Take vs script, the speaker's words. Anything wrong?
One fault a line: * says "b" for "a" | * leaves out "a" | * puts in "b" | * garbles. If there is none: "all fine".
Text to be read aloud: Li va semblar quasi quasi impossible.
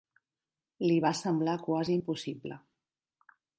* leaves out "quasi"